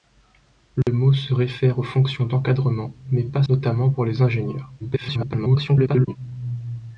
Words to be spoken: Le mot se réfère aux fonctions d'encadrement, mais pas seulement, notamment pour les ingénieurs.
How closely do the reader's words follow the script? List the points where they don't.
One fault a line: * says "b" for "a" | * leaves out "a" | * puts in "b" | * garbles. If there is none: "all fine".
* leaves out "seulement"
* garbles